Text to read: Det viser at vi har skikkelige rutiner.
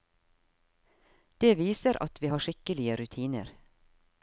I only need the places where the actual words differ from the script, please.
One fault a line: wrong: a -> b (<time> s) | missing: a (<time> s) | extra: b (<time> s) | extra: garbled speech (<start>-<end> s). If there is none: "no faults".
no faults